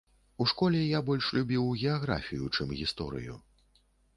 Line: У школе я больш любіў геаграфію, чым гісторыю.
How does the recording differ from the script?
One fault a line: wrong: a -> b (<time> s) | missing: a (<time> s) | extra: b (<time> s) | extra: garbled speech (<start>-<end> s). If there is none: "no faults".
no faults